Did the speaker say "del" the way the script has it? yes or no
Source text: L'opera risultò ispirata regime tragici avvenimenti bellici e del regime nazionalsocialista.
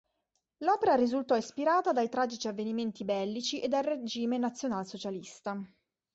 no